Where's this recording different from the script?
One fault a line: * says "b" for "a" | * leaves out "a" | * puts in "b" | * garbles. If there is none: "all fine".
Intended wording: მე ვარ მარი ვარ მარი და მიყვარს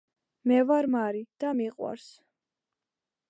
* leaves out "ვარ მარი"